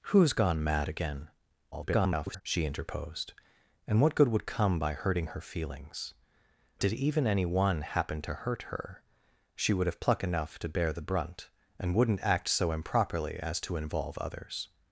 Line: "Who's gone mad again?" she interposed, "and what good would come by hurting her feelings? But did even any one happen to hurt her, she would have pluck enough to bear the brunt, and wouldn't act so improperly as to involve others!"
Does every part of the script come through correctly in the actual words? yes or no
no